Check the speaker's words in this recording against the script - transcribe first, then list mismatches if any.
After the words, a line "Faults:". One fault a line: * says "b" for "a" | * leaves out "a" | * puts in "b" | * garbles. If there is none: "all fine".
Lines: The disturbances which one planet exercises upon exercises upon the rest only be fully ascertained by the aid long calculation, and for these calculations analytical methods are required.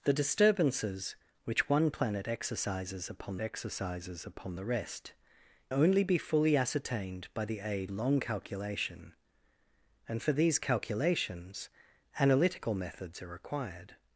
The disturbances which one planet exercises upon exercises upon the rest only be fully ascertained by the aid long calculation, and for these calculations analytical methods are required.
Faults:
all fine